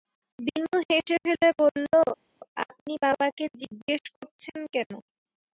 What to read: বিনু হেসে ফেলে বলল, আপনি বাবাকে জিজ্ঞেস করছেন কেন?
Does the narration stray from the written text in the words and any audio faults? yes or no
no